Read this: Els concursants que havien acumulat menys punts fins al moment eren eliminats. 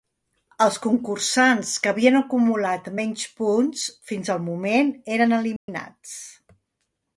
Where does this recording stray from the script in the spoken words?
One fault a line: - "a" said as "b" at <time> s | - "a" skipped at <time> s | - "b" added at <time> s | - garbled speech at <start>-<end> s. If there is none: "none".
none